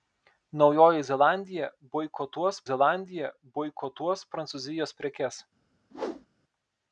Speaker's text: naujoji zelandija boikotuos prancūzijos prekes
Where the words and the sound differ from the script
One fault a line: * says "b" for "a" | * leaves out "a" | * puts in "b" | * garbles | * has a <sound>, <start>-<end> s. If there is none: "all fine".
* puts in "zelandija boikotuos"
* has a whoosh, 5.9-6.3 s